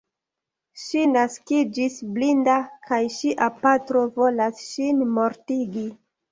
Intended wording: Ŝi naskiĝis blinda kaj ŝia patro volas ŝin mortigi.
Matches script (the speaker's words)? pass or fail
pass